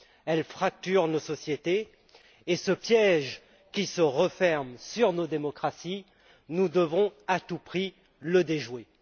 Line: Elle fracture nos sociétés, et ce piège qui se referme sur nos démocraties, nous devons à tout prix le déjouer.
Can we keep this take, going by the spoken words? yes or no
yes